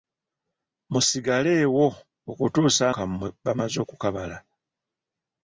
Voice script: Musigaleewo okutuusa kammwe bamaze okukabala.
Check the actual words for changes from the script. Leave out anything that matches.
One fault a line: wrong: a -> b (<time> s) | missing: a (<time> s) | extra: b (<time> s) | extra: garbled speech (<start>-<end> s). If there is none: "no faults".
no faults